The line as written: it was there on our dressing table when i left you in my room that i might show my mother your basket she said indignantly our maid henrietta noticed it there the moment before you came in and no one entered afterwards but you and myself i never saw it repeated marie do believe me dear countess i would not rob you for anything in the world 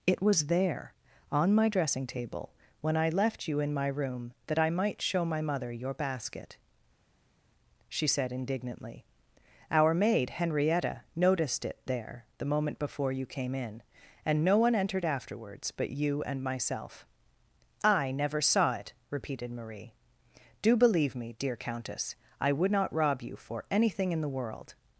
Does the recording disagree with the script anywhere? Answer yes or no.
yes